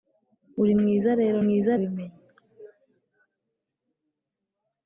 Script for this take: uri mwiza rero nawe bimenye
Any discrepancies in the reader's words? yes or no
yes